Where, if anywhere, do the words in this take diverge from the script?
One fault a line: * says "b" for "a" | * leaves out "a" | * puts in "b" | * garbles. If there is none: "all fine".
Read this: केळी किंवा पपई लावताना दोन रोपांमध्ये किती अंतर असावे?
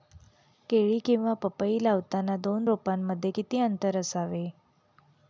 all fine